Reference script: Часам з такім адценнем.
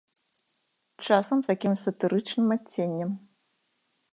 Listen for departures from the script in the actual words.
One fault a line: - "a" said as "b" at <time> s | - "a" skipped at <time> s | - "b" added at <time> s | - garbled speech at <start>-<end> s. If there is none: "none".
- "сатырычным" added at 1.8 s